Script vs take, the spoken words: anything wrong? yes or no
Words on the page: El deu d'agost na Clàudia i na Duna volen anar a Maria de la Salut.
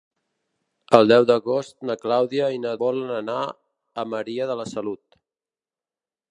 yes